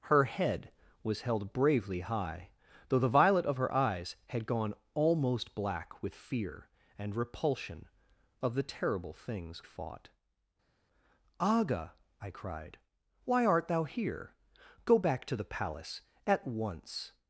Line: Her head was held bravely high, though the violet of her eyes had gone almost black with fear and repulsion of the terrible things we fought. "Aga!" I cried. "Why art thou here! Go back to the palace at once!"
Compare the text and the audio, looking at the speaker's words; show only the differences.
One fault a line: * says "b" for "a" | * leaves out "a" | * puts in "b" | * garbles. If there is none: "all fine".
* leaves out "we"